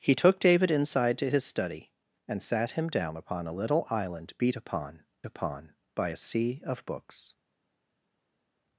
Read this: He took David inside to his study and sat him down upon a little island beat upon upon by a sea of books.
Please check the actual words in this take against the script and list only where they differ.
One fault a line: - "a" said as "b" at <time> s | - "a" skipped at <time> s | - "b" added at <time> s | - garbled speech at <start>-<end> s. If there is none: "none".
none